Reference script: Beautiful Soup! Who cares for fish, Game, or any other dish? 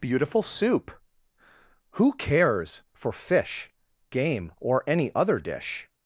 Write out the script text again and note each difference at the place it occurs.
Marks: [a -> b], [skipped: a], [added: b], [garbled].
Beautiful Soup! Who cares for fish, Game, or any other dish?